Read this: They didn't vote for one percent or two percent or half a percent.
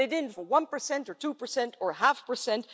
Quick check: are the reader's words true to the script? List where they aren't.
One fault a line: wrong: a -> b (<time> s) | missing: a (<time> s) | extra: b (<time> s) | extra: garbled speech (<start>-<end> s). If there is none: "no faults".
missing: vote (0.3 s)